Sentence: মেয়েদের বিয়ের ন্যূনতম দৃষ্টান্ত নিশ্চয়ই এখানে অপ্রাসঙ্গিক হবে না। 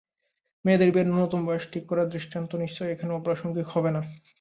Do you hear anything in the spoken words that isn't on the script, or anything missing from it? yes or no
yes